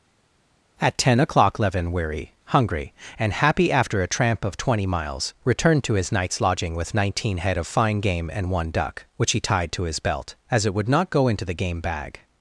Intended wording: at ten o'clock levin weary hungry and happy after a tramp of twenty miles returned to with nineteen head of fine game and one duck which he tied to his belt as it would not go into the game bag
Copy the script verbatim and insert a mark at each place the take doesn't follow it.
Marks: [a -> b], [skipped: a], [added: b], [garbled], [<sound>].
at ten o'clock levin weary hungry and happy after a tramp of twenty miles returned to [added: his night's lodging] with nineteen head of fine game and one duck which he tied to his belt as it would not go into the game bag